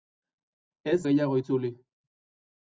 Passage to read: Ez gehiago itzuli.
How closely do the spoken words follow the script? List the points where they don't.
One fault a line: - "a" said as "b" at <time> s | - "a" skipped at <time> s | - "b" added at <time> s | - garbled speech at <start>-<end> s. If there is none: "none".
none